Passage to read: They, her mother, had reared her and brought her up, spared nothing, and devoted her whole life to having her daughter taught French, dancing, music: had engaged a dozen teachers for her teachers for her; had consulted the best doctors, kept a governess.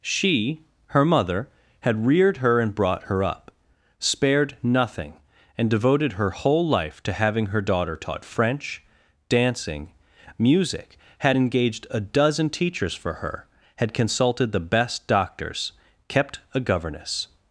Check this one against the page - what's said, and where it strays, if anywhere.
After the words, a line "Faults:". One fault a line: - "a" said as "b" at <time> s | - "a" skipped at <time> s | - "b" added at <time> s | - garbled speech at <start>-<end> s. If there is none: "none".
She, her mother, had reared her and brought her up, spared nothing, and devoted her whole life to having her daughter taught French, dancing, music: had engaged a dozen teachers for her; had consulted the best doctors, kept a governess.
Faults:
- "They" said as "She" at 0.0 s
- "teachers for her" skipped at 13.5 s